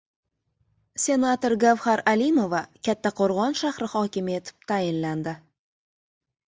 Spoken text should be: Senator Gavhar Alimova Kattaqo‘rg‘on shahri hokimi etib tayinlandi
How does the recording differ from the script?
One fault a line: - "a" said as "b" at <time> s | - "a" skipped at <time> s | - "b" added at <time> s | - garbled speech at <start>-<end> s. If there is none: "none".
none